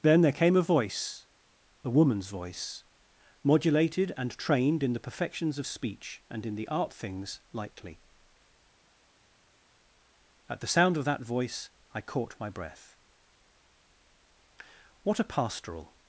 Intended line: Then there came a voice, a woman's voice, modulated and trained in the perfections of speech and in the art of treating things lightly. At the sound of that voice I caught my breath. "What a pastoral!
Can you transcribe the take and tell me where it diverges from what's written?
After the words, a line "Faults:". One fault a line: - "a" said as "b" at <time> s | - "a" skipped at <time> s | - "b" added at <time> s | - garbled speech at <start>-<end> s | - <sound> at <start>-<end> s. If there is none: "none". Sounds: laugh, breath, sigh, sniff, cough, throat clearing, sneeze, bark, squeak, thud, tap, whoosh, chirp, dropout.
Then there came a voice, a woman's voice, modulated and trained in the perfections of speech and in the art things lightly. At the sound of that voice I caught my breath. "What a pastoral!
Faults:
- "of treating" skipped at 6.9 s